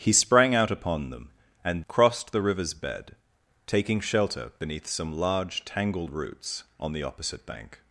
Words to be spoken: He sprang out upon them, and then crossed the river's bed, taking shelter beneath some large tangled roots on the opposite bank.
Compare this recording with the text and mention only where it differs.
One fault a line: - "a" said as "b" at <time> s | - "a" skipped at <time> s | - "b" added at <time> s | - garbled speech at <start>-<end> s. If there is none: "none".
- "then" skipped at 1.8 s